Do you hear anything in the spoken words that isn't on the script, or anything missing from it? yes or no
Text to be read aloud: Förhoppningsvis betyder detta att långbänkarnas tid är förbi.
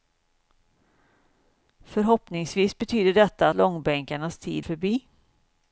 yes